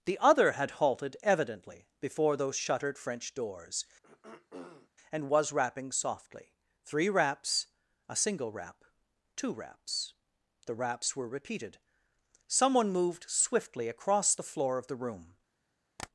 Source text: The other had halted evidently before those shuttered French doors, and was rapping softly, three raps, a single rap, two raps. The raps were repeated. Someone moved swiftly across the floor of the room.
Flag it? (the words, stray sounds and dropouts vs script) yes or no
yes